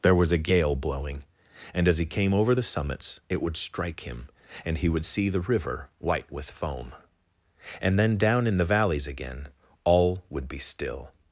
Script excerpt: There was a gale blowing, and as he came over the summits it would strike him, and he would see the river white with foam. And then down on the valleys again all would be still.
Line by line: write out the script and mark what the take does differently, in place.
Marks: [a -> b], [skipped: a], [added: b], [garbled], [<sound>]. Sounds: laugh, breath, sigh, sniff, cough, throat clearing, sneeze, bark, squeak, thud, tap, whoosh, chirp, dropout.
There was a gale blowing, and as he came over the summits it would strike him, and he would see the river white with foam. And then down [on -> in] the valleys again all would be still.